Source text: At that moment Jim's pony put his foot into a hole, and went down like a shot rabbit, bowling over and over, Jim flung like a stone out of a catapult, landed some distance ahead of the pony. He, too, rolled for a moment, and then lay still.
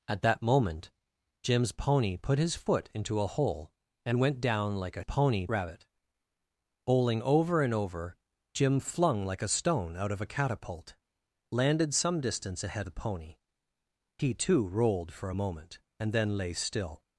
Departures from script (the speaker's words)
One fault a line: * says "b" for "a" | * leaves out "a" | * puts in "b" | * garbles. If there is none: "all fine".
* says "pony" for "shot"
* leaves out "of"